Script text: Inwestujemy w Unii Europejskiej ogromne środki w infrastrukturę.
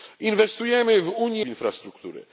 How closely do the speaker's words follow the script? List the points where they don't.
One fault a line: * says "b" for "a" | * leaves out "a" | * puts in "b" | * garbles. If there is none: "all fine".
* leaves out "Europejskiej ogromne środki"